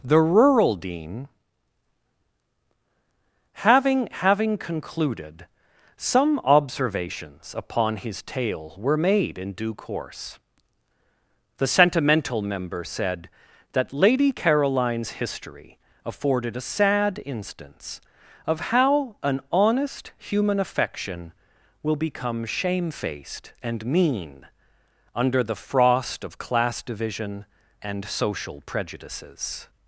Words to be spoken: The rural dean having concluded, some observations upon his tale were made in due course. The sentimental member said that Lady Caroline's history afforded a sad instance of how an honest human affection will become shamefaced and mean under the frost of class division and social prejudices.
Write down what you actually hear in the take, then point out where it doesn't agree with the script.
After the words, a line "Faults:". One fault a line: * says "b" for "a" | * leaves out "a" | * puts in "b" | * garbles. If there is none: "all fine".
The rural dean having having concluded, some observations upon his tale were made in due course. The sentimental member said that Lady Caroline's history afforded a sad instance of how an honest human affection will become shamefaced and mean under the frost of class division and social prejudices.
Faults:
* puts in "having"